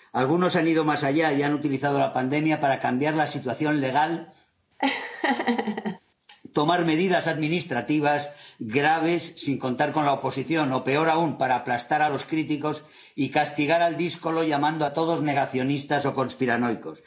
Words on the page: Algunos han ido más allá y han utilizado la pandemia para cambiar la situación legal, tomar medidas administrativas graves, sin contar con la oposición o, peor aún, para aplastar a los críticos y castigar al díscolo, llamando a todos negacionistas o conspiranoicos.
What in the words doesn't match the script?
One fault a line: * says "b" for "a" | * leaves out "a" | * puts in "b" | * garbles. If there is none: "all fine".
all fine